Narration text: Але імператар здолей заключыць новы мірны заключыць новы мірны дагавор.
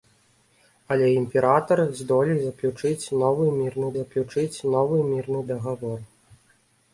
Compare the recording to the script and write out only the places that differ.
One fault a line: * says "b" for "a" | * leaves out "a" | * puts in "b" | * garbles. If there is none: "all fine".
all fine